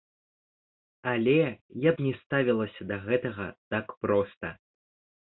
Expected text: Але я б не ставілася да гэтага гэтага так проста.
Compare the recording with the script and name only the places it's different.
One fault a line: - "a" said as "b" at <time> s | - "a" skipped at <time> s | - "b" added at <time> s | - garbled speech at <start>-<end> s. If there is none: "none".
- "гэтага" skipped at 3.5 s